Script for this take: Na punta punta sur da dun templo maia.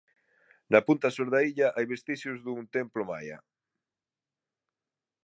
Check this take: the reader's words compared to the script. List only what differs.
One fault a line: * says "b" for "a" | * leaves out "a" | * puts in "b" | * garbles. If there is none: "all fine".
* leaves out "punta"
* puts in "illa hai vestixios"